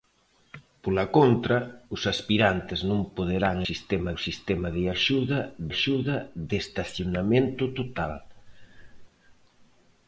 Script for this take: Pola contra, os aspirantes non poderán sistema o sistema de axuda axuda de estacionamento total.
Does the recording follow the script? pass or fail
pass